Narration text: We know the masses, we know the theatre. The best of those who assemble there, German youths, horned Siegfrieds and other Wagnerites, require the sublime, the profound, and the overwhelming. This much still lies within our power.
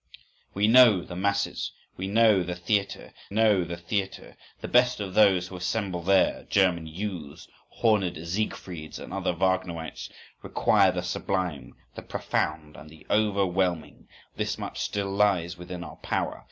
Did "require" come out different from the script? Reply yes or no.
no